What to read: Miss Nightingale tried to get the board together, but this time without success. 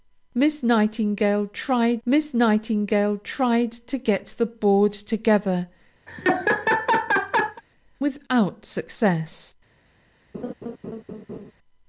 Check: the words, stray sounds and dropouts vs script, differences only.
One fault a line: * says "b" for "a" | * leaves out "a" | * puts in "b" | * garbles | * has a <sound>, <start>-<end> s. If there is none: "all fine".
* puts in "miss Nightingale tried"
* leaves out "but this time"
* has a laugh, 6.1-7.6 s
* has a laugh, 10.3-11.5 s